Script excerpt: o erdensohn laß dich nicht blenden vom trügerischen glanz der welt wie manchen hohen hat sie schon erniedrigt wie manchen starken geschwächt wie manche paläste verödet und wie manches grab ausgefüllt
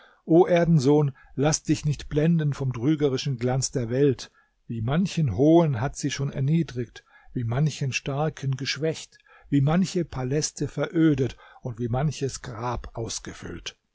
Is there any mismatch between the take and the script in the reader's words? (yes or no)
no